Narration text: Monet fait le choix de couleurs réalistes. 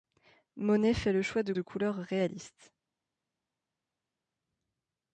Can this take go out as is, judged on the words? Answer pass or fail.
fail